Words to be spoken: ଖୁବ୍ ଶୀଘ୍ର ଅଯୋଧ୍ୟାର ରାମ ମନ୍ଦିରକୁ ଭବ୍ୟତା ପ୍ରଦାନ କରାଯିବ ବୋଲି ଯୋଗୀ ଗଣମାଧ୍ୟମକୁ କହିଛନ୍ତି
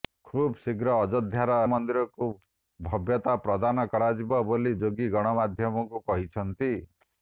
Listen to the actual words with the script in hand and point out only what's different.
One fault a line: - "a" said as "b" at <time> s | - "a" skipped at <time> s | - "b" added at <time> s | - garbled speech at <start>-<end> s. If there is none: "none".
- "ରାମ" skipped at 1.6 s